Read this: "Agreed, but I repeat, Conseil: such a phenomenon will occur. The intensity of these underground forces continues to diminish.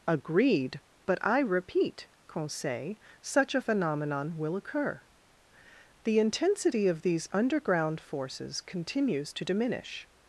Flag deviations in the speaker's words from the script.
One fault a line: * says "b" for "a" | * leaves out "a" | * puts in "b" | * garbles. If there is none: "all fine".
all fine